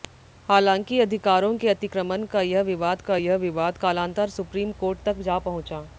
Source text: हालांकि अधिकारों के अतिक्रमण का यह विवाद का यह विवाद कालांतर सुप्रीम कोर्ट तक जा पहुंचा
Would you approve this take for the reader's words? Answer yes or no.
yes